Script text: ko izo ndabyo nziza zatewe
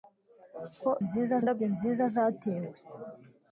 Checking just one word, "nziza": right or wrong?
right